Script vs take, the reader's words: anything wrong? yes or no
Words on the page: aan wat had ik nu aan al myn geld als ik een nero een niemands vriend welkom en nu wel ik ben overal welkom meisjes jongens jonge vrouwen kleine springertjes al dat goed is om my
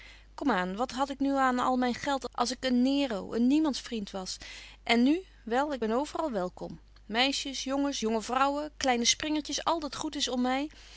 yes